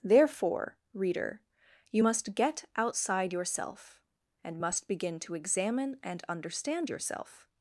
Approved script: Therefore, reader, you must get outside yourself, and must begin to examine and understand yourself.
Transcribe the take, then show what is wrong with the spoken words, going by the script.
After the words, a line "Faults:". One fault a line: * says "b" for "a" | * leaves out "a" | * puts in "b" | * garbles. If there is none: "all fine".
Therefore, reader, you must get outside yourself, and must begin to examine and understand yourself.
Faults:
all fine